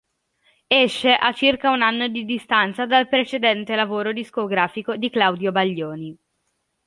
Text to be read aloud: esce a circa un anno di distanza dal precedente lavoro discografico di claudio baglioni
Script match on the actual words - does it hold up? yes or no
yes